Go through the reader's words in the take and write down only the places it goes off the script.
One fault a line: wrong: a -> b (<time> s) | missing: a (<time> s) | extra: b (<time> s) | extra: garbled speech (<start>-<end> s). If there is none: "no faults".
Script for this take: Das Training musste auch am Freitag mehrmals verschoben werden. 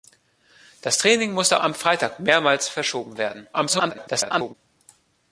missing: auch (1.6 s)
extra: garbled speech (3.5-4.5 s)